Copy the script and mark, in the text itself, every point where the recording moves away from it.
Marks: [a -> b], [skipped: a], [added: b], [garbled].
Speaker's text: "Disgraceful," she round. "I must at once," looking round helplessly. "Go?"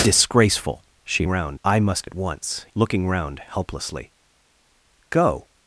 "Disgraceful," she round. "I must at once," looking round helplessly. "Go?"